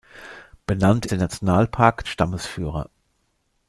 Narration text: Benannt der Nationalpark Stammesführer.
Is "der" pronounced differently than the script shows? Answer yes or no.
no